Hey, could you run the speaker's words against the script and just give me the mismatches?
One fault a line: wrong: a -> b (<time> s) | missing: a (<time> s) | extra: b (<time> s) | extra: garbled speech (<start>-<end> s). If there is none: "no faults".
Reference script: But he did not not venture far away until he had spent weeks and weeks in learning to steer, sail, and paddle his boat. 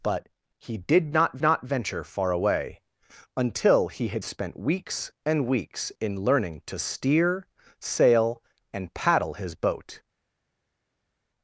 no faults